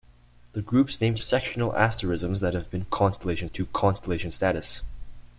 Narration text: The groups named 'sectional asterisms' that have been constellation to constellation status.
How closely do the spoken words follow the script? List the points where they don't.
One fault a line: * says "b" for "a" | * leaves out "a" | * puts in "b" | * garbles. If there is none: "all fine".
all fine